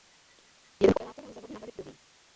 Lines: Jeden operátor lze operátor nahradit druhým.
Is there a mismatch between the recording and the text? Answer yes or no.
yes